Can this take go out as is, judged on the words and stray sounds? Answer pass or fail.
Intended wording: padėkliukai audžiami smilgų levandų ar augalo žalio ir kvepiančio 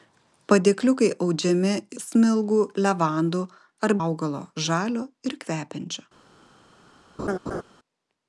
fail